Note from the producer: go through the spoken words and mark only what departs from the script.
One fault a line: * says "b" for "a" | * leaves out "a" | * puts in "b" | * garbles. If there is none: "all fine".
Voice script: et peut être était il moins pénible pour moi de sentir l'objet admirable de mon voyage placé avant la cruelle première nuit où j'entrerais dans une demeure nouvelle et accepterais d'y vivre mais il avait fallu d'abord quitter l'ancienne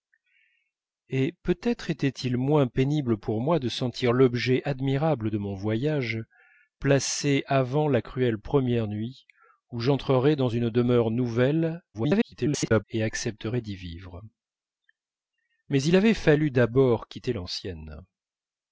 * garbles